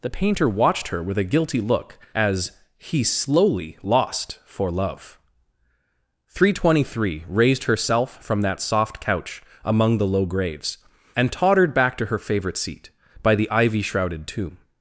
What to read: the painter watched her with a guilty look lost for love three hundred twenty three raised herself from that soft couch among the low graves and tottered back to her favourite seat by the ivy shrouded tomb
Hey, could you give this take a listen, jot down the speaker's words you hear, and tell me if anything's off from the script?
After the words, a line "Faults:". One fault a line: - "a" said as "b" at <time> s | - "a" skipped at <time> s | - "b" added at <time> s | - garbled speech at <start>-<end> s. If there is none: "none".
the painter watched her with a guilty look as he slowly lost for love three hundred twenty three raised herself from that soft couch among the low graves and tottered back to her favourite seat by the ivy shrouded tomb
Faults:
- "as he slowly" added at 2.1 s